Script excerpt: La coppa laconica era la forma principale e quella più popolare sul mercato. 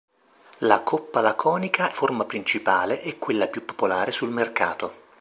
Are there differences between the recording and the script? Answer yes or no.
yes